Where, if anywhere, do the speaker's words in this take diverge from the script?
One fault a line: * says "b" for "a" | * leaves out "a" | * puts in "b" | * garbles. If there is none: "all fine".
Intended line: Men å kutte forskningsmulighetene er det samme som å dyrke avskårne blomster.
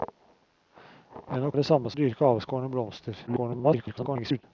* leaves out "kutte forskningsmulighetene"
* leaves out "som"
* garbles